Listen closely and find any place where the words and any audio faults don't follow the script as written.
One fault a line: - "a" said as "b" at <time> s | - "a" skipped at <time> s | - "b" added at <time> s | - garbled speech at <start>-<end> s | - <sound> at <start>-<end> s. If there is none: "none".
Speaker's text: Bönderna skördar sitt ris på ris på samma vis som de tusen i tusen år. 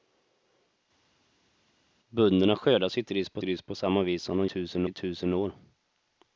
none